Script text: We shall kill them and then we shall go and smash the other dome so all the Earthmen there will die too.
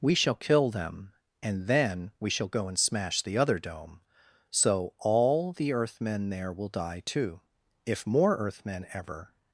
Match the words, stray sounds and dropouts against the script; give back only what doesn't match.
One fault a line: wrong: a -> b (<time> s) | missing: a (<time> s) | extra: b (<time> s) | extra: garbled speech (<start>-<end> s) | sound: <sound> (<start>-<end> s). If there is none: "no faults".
extra: If more Earthmen ever (7.8 s)